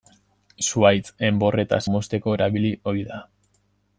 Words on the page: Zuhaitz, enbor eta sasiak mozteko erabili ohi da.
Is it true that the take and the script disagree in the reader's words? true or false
true